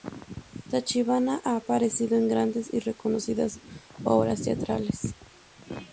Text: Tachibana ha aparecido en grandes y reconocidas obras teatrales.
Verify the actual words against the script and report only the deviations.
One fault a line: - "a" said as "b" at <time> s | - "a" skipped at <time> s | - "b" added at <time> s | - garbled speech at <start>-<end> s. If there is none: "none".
none